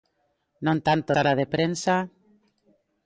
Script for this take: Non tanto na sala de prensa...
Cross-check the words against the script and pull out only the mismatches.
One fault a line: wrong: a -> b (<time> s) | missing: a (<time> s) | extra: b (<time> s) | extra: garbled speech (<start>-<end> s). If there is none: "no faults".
missing: na (1.1 s)